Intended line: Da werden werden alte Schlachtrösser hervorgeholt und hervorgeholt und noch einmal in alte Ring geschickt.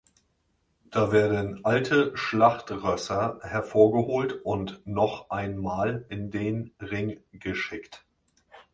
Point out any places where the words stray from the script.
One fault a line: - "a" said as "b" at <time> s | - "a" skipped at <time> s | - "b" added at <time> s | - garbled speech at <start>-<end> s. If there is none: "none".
- "werden" skipped at 1.6 s
- "hervorgeholt und" skipped at 4.8 s
- "alte" said as "den" at 6.3 s